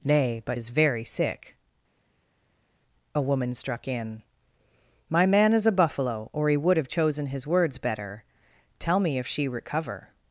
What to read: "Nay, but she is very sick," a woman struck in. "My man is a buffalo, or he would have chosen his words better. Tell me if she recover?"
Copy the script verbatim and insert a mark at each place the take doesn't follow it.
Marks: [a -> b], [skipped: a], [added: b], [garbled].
"Nay, but [skipped: she] is very sick," a woman struck in. "My man is a buffalo, or he would have chosen his words better. Tell me if she recover?"